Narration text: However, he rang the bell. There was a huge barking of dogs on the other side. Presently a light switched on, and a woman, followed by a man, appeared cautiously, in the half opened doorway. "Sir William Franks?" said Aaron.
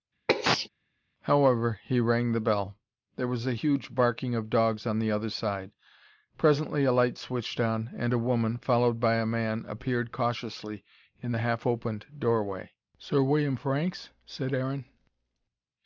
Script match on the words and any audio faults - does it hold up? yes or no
no